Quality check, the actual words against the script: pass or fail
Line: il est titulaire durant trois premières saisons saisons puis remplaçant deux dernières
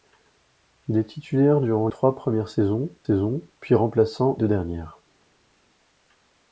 pass